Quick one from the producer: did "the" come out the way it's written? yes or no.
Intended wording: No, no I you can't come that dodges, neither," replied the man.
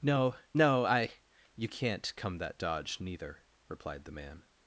yes